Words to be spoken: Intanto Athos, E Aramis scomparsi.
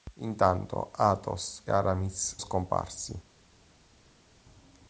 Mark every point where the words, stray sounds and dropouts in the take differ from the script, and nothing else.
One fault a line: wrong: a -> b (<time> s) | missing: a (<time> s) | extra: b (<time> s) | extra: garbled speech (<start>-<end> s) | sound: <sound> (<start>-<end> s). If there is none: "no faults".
no faults